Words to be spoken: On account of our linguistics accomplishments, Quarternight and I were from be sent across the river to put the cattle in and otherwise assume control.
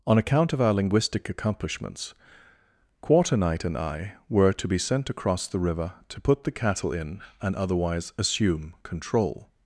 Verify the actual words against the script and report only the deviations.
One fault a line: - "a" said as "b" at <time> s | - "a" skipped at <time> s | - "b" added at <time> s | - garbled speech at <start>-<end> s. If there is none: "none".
- "linguistics" said as "linguistic" at 0.7 s
- "from" said as "to" at 4.5 s